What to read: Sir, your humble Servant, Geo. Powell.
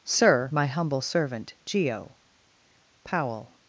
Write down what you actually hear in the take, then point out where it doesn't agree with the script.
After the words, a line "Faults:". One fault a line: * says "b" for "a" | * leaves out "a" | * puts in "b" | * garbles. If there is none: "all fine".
Sir, my humble Servant, Geo. Powell.
Faults:
* says "my" for "your"